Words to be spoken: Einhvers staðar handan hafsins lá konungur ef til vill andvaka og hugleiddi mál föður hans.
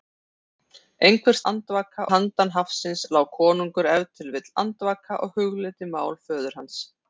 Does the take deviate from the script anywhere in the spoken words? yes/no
yes